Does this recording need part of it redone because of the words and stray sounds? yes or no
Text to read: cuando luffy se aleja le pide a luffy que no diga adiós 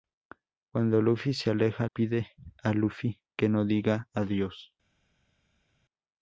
yes